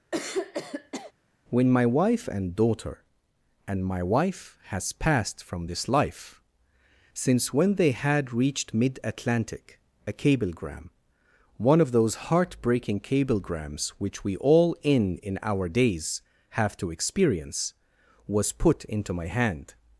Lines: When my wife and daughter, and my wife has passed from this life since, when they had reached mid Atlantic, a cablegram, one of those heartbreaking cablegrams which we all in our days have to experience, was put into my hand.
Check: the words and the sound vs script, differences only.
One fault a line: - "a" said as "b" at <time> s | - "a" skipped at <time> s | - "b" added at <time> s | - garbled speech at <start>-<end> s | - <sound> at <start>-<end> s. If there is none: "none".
- throat clearing at 0.1-1.1 s
- "in" added at 15.2 s